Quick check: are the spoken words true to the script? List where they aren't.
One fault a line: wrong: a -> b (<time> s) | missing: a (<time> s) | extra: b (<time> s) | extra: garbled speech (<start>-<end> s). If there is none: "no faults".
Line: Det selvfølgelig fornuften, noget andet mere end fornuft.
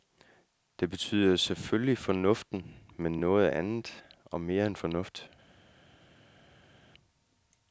extra: betyder (0.9 s)
extra: men (3.0 s)
extra: og (4.2 s)